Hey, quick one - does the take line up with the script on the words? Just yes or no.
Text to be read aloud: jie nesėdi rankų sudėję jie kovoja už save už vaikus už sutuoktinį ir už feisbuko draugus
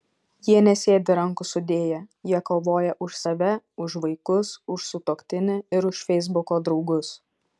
yes